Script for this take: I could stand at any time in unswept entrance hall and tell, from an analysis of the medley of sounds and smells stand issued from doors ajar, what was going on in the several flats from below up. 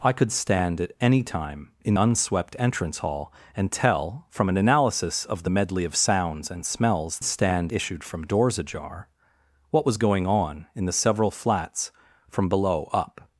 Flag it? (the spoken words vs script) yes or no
no